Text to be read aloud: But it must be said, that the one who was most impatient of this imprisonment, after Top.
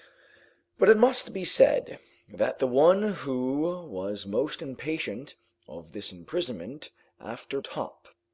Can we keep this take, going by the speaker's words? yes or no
yes